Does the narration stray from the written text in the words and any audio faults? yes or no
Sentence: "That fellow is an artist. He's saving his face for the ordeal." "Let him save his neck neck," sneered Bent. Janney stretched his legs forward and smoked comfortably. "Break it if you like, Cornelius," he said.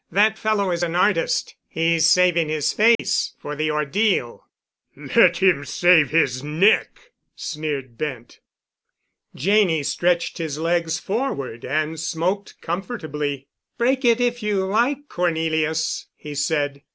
yes